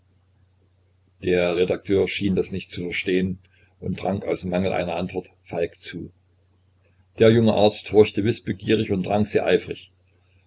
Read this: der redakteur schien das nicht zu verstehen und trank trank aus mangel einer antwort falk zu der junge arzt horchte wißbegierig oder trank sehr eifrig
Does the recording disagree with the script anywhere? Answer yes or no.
yes